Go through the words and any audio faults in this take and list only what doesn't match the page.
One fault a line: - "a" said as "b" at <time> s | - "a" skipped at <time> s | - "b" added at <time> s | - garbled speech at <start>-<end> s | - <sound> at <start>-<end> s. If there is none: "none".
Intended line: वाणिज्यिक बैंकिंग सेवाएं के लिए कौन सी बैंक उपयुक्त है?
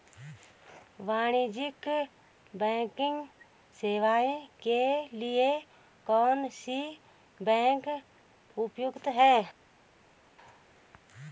none